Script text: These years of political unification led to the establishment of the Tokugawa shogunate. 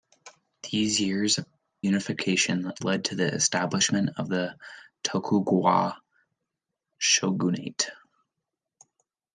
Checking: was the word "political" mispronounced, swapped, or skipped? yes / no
yes